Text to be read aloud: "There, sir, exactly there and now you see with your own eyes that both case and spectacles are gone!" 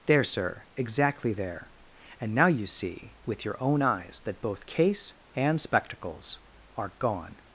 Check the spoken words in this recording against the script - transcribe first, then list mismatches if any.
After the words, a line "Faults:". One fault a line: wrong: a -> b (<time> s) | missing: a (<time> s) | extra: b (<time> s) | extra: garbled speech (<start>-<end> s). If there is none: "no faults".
"There, sir, exactly there and now you see with your own eyes that both case and spectacles are gone!"
Faults:
no faults